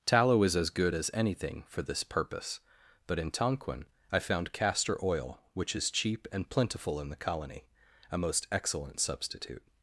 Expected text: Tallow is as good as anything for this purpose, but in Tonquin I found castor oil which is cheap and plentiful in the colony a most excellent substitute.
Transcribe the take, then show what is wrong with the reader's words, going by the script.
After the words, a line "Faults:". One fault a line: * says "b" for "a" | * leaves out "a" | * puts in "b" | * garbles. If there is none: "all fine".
Tallow is as good as anything for this purpose, but in Tonquin I found castor oil which is cheap and plentiful in the colony a most excellent substitute.
Faults:
all fine